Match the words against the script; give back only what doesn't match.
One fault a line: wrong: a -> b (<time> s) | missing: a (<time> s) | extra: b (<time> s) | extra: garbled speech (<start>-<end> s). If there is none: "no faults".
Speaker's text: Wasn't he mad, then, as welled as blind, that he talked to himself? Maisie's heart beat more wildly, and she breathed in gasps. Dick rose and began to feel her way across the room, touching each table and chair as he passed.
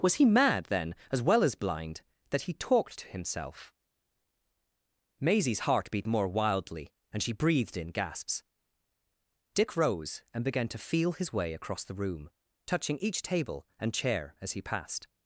wrong: Wasn't -> Was (0.0 s)
wrong: welled -> well (1.2 s)
wrong: her -> his (11.1 s)